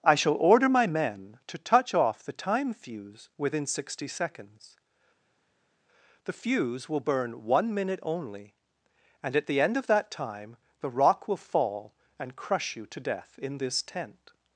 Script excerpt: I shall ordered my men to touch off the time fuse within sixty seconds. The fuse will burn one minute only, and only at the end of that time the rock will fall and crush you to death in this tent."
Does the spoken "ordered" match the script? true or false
false